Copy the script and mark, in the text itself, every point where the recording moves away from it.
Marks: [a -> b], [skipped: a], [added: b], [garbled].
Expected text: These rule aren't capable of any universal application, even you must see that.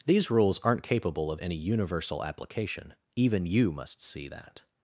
These [rule -> rules] aren't capable of any universal application, even you must see that.